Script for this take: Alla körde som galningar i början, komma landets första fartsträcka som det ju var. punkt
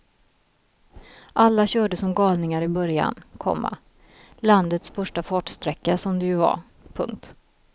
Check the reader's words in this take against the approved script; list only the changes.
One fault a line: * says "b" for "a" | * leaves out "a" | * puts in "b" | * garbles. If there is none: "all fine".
all fine